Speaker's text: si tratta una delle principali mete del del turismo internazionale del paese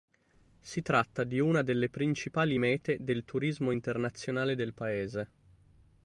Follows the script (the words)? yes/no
no